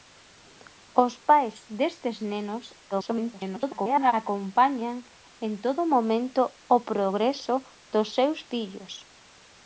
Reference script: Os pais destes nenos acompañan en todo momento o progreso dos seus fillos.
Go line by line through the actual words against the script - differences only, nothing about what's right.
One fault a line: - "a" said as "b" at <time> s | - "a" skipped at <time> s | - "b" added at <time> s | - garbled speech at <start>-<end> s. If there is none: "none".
- garbled speech at 2.9-4.1 s